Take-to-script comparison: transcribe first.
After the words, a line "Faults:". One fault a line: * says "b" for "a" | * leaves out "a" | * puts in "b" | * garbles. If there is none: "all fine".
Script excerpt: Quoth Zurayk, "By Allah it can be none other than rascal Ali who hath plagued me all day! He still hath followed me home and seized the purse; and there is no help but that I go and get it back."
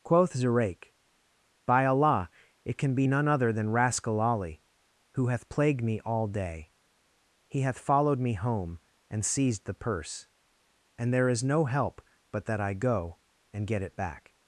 Quoth Zurayk, "By Allah it can be none other than rascal Ali who hath plagued me all day! He hath followed me home and seized the purse; and there is no help but that I go and get it back."
Faults:
* leaves out "still"